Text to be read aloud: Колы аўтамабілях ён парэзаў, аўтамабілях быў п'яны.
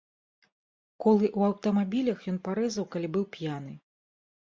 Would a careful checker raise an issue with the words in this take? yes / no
yes